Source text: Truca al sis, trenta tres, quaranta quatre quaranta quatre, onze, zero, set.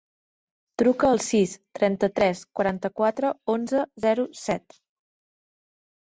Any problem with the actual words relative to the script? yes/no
yes